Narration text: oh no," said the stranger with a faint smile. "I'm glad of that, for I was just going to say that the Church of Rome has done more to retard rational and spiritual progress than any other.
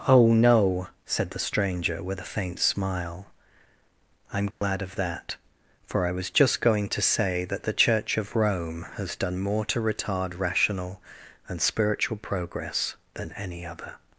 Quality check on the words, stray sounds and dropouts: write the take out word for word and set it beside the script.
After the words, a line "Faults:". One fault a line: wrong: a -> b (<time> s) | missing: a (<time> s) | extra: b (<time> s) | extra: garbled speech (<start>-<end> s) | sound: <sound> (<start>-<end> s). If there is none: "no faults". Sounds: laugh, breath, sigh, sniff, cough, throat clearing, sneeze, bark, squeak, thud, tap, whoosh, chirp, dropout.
oh no," said the stranger with a faint smile. "I'm glad of that, for I was just going to say that the Church of Rome has done more to retard rational and spiritual progress than any other.
Faults:
sound: dropout (4.5-4.6 s)